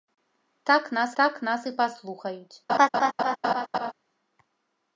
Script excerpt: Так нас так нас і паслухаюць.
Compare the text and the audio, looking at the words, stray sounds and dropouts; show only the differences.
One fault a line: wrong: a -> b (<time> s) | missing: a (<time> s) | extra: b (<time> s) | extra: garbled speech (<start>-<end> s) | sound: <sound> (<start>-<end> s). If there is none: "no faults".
sound: laugh (2.7-3.9 s)